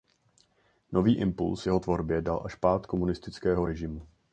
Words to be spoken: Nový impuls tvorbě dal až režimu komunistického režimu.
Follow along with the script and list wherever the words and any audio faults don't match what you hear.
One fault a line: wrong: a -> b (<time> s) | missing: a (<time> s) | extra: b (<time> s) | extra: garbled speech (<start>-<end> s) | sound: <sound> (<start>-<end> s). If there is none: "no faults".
extra: jeho (1.7 s)
wrong: režimu -> pád (2.5 s)